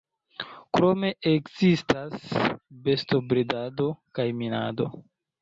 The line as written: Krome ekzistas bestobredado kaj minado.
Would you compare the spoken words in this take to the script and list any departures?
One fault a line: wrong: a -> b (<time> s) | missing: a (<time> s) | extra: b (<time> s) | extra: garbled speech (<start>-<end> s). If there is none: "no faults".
no faults